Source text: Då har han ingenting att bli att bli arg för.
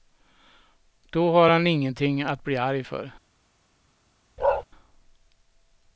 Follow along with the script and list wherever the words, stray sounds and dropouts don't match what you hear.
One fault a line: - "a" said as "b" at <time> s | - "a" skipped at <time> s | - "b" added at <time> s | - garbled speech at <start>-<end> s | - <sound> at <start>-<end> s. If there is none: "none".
- "att bli" skipped at 2.6 s
- bark at 4.4-4.6 s